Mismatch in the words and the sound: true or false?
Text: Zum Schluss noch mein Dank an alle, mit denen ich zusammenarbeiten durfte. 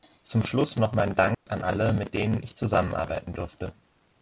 true